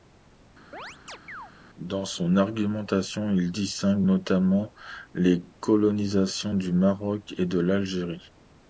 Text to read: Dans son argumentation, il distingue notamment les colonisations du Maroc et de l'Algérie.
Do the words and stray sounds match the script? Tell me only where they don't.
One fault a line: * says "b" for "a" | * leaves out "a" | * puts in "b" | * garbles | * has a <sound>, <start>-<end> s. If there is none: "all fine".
* has a chirp, 0.7-1.5 s